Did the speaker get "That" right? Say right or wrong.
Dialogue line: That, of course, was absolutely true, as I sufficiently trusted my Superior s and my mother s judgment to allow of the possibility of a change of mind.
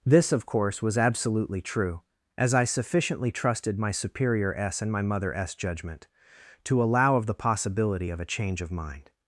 wrong